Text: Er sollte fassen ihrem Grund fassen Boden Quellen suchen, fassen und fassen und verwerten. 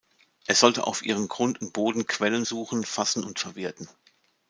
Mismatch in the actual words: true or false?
true